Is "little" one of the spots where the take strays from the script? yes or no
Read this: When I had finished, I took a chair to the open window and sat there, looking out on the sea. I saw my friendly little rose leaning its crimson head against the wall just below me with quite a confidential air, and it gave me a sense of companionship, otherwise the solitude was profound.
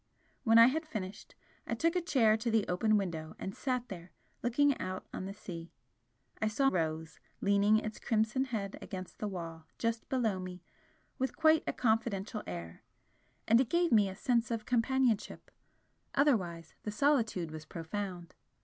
yes